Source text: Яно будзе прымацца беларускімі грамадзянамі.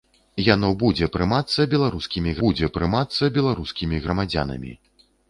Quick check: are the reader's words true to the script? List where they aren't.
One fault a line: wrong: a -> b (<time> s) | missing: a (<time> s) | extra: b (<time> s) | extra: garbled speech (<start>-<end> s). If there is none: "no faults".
extra: будзе прымацца беларускімі (2.4 s)